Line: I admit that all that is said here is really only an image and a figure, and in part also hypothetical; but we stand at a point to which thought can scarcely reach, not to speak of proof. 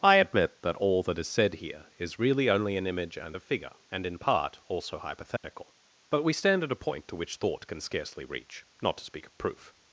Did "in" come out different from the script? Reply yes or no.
no